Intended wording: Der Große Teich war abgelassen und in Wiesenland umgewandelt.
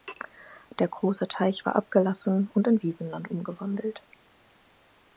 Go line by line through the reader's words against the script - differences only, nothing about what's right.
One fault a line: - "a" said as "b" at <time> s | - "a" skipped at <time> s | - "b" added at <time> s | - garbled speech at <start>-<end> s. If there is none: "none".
none